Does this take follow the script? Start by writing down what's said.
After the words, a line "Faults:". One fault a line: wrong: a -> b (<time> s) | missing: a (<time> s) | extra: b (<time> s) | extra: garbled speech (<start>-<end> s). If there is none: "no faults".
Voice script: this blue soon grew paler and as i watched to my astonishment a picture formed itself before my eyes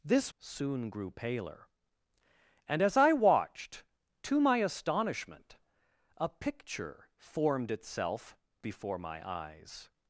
this soon grew paler and as i watched to my astonishment a picture formed itself before my eyes
Faults:
missing: blue (0.3 s)